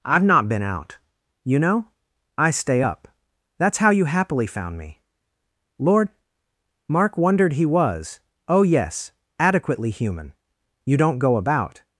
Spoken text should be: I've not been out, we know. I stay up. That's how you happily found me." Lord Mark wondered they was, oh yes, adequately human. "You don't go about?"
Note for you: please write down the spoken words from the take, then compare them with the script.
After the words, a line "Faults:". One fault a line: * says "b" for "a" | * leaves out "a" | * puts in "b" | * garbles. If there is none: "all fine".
I've not been out, you know. I stay up. That's how you happily found me." Lord Mark wondered he was, oh yes, adequately human. "You don't go about?"
Faults:
* says "you" for "we"
* says "he" for "they"